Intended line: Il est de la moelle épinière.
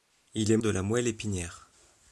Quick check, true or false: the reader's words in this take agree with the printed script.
true